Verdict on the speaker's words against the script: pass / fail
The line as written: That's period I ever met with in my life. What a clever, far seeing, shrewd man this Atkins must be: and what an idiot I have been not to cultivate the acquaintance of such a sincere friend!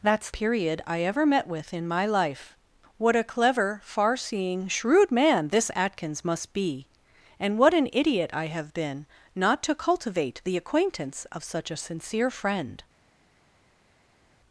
pass